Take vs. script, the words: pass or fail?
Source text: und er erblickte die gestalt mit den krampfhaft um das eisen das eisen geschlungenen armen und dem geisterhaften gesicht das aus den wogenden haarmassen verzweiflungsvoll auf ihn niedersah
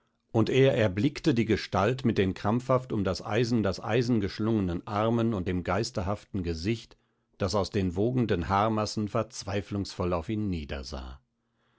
pass